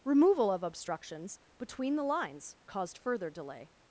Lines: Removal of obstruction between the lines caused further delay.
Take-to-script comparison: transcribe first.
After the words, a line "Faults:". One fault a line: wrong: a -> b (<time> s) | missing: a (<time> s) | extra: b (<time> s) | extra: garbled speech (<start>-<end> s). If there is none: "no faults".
Removal of obstructions between the lines caused further delay.
Faults:
wrong: obstruction -> obstructions (0.6 s)